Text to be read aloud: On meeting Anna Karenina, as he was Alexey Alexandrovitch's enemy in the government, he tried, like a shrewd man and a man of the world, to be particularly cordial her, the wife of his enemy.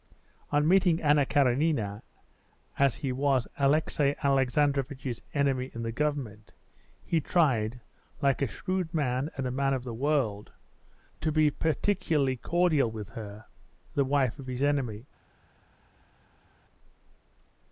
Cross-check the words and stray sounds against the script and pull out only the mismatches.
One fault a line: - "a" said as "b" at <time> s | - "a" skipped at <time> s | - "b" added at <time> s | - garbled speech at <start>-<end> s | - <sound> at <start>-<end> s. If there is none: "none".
- "with" added at 12.9 s